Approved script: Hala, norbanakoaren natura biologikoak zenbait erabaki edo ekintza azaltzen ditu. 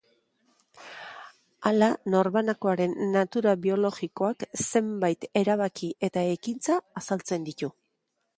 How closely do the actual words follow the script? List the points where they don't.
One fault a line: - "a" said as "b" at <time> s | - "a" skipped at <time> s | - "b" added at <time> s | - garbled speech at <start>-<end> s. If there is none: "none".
- "edo" said as "eta" at 6.1 s